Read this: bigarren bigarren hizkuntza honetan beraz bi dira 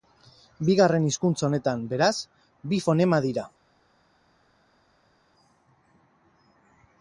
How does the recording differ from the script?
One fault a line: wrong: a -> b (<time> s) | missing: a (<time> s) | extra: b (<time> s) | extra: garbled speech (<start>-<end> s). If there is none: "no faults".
missing: bigarren (1.0 s)
extra: fonema (2.8 s)